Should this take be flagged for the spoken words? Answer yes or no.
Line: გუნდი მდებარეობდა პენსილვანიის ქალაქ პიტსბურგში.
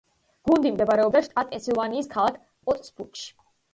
yes